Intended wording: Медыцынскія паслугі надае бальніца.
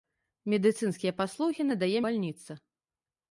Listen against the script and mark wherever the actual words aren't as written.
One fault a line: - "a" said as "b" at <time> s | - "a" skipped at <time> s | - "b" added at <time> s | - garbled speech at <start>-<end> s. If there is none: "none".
none